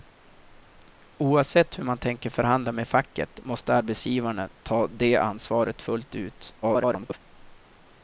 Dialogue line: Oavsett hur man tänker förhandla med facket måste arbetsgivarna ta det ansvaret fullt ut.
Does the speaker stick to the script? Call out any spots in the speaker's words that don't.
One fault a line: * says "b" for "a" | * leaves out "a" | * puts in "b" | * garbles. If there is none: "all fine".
* garbles